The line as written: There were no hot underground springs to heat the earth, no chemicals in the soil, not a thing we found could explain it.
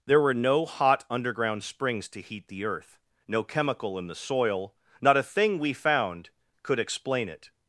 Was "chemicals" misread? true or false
true